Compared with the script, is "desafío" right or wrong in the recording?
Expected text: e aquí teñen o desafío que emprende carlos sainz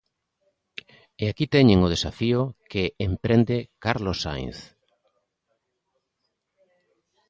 right